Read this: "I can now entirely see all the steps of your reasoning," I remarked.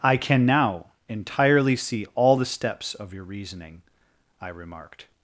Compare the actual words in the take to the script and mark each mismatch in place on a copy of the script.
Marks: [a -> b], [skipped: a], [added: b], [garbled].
"I can now entirely see all the steps of your reasoning," I remarked.